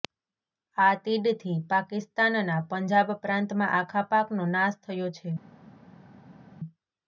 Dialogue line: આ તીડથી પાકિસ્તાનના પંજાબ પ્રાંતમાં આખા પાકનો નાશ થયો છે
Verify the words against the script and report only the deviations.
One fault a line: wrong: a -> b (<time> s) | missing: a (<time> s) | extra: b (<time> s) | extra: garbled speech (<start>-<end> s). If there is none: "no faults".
no faults